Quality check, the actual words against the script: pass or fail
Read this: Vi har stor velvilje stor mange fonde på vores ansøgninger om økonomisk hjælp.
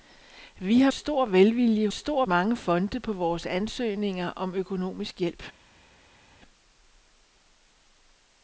pass